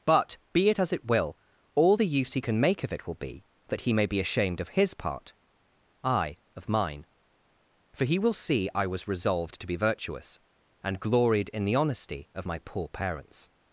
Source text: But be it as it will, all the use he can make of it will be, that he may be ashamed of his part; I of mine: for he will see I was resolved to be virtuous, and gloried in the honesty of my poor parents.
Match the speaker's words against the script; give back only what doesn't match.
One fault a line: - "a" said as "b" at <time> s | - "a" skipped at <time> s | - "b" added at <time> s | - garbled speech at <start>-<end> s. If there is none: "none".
none